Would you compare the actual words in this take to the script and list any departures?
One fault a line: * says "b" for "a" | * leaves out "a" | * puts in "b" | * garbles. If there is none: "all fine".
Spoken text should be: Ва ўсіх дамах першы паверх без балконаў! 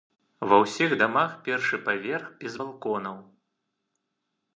all fine